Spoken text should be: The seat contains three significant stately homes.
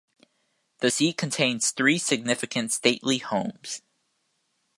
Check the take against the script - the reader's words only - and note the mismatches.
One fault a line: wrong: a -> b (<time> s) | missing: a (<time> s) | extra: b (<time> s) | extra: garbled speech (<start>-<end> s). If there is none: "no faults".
no faults